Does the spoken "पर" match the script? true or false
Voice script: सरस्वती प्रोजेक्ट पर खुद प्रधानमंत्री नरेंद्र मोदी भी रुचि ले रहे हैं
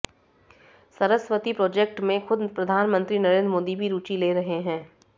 false